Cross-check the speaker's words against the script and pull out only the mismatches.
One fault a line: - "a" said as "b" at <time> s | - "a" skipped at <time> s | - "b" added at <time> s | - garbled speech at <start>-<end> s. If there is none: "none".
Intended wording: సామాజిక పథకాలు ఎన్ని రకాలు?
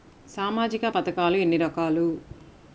none